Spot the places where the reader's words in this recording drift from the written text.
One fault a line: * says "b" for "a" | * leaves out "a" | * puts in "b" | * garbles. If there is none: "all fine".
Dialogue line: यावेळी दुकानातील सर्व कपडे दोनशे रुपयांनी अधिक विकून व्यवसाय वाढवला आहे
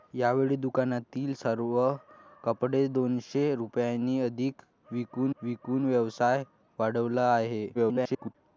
* puts in "विकून"
* garbles